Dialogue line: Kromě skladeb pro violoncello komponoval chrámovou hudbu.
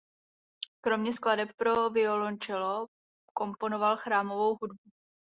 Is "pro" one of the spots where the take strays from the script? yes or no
no